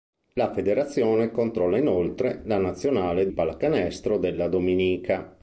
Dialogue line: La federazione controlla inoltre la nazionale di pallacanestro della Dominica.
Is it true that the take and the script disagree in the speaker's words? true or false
true